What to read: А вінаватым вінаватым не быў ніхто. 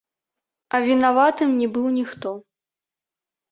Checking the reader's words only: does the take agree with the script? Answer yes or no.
no